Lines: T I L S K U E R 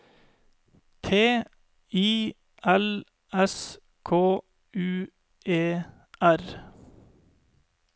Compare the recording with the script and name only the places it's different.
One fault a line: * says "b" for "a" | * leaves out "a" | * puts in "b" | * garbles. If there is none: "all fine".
all fine